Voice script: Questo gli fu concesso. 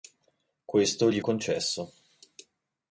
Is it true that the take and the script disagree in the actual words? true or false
true